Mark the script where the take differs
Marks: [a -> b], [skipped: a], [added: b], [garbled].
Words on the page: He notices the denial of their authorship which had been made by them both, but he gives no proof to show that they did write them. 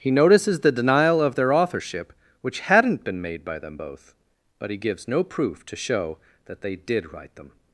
He notices the denial of their authorship which [had -> hadn't] been made by them both, but he gives no proof to show that they did write them.